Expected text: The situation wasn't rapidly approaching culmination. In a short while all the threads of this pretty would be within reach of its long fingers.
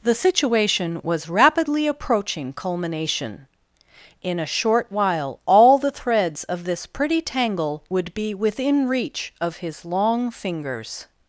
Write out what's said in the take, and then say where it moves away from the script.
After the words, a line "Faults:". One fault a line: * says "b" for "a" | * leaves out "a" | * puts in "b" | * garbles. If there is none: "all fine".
The situation was rapidly approaching culmination. In a short while all the threads of this pretty tangle would be within reach of his long fingers.
Faults:
* says "was" for "wasn't"
* puts in "tangle"
* says "his" for "its"